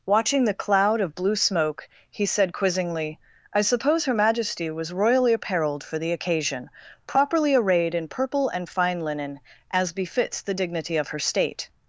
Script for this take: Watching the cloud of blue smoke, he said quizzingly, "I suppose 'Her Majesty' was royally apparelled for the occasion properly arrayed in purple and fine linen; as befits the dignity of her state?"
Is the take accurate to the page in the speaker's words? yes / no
yes